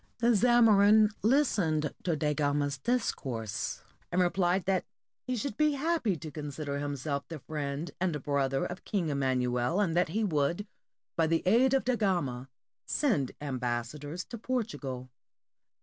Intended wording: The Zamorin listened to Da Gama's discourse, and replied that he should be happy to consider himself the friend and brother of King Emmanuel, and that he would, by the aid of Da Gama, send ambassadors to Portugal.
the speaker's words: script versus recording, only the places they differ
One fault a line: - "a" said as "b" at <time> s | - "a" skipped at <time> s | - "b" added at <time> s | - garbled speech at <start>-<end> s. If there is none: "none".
none